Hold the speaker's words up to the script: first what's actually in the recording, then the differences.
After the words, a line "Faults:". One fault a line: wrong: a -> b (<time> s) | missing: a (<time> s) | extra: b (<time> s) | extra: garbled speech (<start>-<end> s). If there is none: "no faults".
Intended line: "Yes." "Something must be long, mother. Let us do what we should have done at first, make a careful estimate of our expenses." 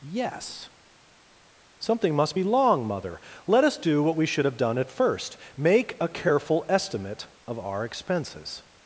"Yes." "Something must be long, mother. Let us do what we should have done at first, make a careful estimate of our expenses."
Faults:
no faults